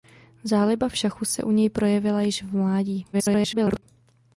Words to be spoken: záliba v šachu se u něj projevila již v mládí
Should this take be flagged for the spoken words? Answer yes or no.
yes